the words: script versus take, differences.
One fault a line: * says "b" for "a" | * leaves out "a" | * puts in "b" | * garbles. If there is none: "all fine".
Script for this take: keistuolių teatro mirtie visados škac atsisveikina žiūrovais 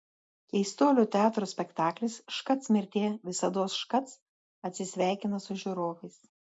* puts in "spektaklis škac"
* puts in "su"